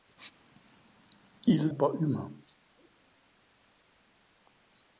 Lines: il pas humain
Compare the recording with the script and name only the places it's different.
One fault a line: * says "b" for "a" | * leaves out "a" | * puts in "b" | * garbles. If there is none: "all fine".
all fine